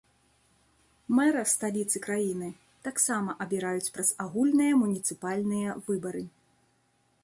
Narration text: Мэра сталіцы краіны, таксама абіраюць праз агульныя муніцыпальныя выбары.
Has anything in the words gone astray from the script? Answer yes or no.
no